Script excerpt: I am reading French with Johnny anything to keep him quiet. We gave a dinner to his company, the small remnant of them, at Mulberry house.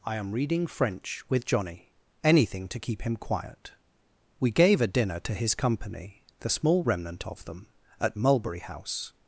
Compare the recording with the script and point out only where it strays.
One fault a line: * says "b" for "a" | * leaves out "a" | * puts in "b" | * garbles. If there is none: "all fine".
all fine